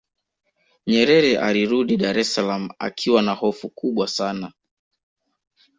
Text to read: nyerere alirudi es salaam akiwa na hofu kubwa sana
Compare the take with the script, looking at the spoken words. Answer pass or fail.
fail